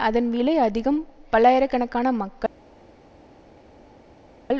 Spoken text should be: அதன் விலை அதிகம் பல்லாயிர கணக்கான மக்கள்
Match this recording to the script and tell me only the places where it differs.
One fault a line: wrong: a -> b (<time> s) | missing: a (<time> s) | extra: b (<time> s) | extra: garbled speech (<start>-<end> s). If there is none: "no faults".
no faults